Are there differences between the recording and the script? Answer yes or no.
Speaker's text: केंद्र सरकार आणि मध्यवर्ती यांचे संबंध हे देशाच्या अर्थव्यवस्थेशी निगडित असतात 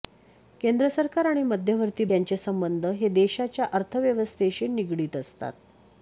no